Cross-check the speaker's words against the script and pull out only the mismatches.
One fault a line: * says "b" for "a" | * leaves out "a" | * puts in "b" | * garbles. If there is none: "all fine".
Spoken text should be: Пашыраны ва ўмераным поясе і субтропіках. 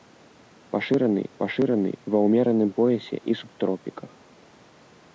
* puts in "пашыраны"